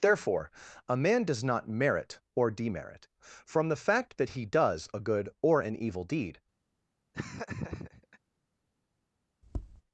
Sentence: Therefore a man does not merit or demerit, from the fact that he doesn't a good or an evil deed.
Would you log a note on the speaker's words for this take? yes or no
yes